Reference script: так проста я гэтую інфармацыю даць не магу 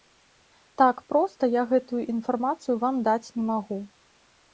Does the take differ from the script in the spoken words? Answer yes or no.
yes